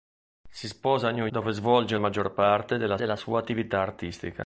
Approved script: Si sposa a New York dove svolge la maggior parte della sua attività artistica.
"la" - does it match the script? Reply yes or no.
no